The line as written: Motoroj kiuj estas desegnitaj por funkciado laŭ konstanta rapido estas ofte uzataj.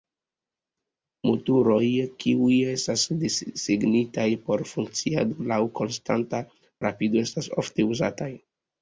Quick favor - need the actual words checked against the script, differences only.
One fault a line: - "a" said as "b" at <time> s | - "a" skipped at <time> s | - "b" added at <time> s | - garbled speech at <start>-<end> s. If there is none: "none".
none